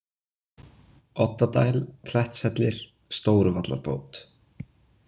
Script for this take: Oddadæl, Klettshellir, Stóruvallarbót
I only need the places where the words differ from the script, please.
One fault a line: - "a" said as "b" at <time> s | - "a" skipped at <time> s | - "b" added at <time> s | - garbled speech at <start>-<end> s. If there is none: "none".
none